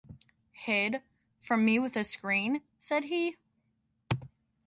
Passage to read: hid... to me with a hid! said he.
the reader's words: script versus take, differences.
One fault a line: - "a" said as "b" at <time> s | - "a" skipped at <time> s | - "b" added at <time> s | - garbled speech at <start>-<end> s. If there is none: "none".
- "to" said as "from" at 1.4 s
- "hid" said as "screen" at 2.0 s